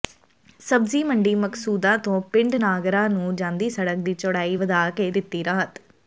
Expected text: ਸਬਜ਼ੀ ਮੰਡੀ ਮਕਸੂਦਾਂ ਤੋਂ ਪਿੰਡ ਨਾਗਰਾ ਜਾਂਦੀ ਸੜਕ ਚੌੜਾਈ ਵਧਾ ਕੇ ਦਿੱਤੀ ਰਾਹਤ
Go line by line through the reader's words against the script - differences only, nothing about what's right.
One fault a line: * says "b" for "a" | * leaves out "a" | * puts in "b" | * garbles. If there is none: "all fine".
* puts in "ਨੂੰ"
* puts in "ਦੀ"